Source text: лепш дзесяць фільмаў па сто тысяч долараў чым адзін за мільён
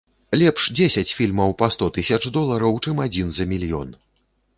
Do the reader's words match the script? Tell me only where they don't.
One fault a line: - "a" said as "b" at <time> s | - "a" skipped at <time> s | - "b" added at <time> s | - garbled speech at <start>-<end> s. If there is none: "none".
none